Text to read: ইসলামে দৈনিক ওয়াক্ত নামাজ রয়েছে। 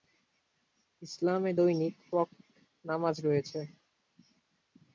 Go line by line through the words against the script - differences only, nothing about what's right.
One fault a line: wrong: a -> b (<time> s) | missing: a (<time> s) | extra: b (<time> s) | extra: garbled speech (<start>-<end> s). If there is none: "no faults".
no faults